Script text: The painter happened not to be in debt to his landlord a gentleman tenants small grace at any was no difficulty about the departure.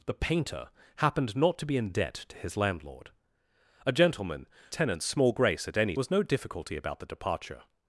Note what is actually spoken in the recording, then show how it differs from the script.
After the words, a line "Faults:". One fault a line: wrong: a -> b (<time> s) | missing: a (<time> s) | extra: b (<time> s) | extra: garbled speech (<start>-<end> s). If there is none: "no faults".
The painter happened not to be in debt to his landlord a gentleman tenants small grace at any was no difficulty about the departure.
Faults:
no faults